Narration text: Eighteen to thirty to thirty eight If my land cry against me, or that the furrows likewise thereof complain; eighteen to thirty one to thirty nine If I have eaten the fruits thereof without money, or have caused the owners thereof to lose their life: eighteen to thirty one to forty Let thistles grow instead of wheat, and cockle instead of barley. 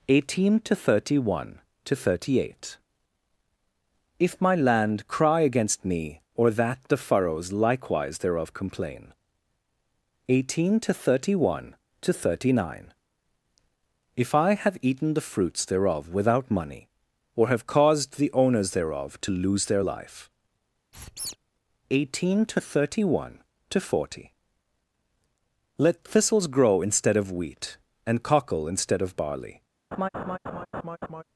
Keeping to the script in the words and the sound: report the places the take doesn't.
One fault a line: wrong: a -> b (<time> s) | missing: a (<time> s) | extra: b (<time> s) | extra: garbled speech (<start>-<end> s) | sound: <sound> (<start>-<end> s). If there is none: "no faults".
extra: one (1.3 s)
sound: squeak (20.9-21.4 s)
sound: laugh (29.9-31.2 s)